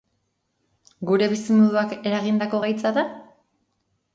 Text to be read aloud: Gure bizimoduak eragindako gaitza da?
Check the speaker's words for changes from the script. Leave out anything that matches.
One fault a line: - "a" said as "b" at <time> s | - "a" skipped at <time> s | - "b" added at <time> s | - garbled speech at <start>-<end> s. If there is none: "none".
none